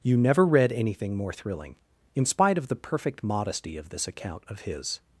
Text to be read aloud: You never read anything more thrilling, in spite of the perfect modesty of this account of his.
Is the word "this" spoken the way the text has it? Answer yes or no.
yes